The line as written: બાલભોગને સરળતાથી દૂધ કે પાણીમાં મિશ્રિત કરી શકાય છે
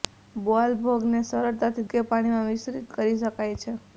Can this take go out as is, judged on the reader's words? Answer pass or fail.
fail